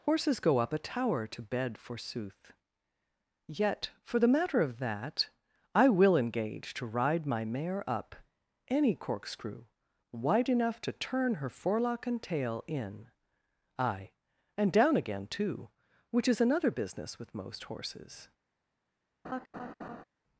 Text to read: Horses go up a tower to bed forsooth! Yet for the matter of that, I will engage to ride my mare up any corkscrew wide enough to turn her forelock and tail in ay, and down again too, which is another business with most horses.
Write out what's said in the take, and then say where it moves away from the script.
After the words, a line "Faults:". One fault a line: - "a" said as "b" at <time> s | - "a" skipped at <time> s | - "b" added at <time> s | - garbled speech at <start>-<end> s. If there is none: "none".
Horses go up a tower to bed forsooth! Yet for the matter of that, I will engage to ride my mare up any corkscrew wide enough to turn her forelock and tail in ay, and down again too, which is another business with most horses.
Faults:
none